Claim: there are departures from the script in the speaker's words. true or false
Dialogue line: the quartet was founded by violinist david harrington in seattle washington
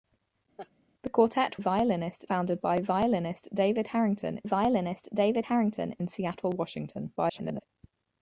true